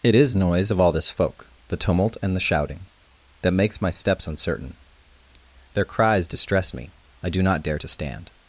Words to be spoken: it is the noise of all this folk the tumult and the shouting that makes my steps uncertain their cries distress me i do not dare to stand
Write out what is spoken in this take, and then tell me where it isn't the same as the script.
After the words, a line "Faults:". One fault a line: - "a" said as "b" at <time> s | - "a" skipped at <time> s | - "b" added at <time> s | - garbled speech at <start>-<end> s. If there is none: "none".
it is noise of all this folk the tumult and the shouting that makes my steps uncertain their cries distress me i do not dare to stand
Faults:
- "the" skipped at 0.3 s